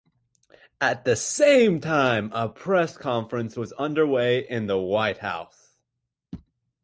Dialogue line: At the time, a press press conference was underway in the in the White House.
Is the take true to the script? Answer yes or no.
no